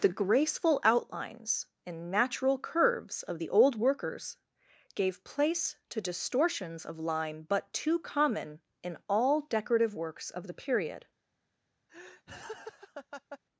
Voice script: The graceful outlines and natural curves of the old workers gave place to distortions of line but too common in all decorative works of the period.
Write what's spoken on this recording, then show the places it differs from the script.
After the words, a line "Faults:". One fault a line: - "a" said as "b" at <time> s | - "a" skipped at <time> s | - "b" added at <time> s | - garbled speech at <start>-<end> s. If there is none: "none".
The graceful outlines and natural curves of the old workers gave place to distortions of line but too common in all decorative works of the period.
Faults:
none